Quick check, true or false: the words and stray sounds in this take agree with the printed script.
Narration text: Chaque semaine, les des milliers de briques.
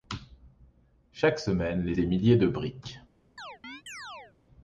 false